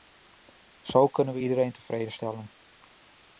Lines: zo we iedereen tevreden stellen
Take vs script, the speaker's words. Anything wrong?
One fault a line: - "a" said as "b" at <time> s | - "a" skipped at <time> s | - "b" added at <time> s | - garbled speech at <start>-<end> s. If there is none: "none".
- "kunnen" added at 1.1 s